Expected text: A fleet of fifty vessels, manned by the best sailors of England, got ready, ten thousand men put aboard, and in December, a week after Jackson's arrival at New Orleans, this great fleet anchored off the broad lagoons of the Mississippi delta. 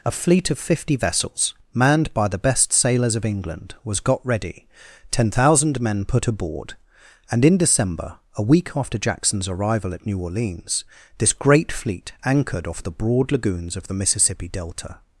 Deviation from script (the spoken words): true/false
true